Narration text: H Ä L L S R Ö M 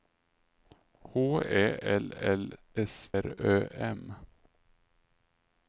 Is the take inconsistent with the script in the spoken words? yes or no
no